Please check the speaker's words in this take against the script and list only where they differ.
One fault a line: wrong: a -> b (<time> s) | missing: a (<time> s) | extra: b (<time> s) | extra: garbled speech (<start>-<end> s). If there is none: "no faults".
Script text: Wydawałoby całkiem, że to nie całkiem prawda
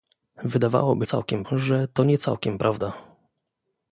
no faults